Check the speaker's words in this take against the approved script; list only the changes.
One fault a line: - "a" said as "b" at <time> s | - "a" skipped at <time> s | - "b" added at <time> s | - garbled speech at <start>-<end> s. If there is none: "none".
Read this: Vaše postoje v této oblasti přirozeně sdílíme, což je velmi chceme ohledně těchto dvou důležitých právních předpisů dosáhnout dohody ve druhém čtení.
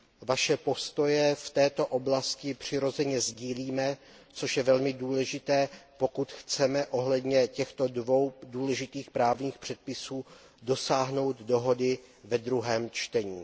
- "důležité pokud" added at 4.9 s